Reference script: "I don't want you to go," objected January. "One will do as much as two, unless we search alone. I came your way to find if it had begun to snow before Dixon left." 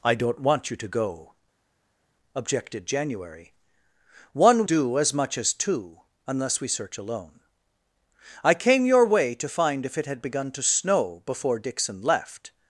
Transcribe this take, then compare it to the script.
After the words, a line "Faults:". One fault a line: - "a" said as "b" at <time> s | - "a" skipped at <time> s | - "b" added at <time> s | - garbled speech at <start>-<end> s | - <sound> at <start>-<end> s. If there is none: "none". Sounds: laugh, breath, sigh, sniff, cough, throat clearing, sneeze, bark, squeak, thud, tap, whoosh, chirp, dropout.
"I don't want you to go," objected January. "One do as much as two, unless we search alone. I came your way to find if it had begun to snow before Dixon left."
Faults:
- "will" skipped at 4.7 s